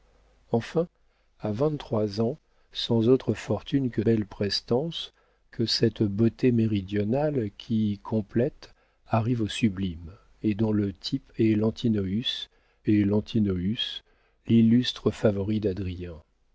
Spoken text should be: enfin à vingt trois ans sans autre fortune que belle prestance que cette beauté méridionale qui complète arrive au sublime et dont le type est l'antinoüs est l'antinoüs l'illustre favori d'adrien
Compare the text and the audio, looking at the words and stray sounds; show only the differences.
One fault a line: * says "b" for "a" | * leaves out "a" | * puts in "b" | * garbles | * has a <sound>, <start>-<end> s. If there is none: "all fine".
all fine